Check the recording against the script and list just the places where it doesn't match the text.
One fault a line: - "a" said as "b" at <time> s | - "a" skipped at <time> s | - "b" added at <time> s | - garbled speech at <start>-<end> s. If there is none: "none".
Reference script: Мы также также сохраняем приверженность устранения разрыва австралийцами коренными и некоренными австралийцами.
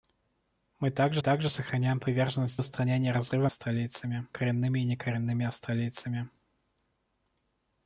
none